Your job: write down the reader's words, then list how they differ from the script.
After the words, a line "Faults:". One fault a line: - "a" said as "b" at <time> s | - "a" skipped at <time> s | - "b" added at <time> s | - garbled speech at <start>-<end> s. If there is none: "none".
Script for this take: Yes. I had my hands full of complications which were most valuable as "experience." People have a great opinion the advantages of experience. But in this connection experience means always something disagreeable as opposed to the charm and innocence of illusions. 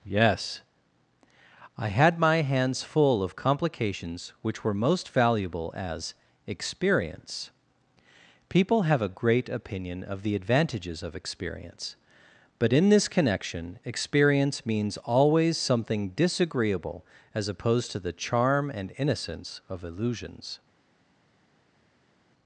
Yes. I had my hands full of complications which were most valuable as "experience." People have a great opinion of the advantages of experience. But in this connection experience means always something disagreeable as opposed to the charm and innocence of illusions.
Faults:
- "of" added at 10.0 s